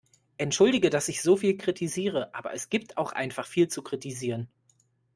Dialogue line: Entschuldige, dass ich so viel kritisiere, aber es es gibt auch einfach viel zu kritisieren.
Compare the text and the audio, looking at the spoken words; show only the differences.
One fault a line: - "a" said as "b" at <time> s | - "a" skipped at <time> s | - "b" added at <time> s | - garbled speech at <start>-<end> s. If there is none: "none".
- "es" skipped at 2.7 s